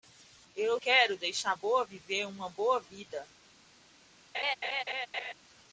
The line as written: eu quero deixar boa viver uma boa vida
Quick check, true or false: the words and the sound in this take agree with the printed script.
false